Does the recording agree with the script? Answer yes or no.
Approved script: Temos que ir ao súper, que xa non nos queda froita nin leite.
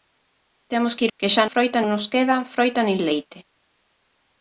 no